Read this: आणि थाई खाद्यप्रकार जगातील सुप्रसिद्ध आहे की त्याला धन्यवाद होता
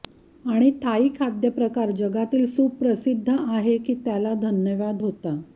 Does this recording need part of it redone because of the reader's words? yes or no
no